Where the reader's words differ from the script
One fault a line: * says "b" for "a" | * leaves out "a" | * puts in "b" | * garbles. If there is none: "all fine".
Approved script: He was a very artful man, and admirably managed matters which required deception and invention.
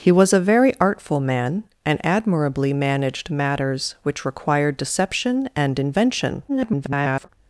* garbles